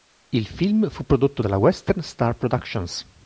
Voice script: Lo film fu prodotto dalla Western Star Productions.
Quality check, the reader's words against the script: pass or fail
fail